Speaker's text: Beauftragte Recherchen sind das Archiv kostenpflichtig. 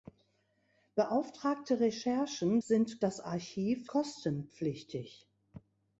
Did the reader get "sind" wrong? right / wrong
right